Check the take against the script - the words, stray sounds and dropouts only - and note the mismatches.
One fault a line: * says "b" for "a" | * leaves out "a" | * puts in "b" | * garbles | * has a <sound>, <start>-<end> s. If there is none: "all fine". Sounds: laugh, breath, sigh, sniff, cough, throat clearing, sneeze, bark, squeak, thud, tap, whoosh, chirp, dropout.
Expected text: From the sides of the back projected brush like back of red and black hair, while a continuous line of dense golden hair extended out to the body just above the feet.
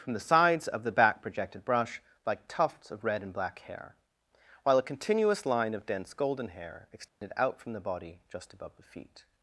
* says "tufts" for "back"
* has a dropout, 7.1-7.2 s
* says "from" for "to"